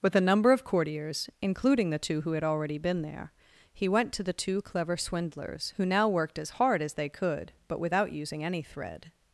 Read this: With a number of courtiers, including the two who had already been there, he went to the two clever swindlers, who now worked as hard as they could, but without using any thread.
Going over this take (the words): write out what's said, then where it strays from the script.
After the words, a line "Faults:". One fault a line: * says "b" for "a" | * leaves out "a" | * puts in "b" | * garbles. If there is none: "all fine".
With a number of courtiers, including the two who had already been there, he went to the two clever swindlers, who now worked as hard as they could, but without using any thread.
Faults:
all fine